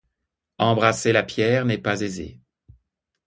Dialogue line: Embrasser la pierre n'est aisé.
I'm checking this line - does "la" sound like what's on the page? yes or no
yes